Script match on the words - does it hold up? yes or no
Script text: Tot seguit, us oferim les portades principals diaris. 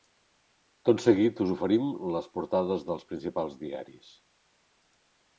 no